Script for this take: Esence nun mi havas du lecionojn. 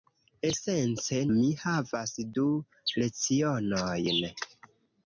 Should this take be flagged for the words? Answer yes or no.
yes